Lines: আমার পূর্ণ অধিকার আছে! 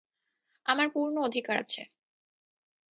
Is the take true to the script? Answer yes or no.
yes